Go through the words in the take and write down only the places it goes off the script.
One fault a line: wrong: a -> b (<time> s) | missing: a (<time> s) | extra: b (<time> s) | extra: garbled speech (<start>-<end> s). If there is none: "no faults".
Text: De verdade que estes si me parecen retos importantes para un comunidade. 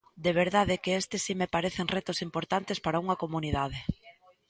wrong: un -> unha (3.0 s)